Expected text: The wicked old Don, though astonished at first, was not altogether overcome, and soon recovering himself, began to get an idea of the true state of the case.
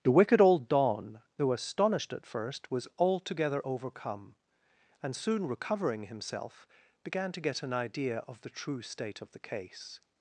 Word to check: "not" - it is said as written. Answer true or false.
false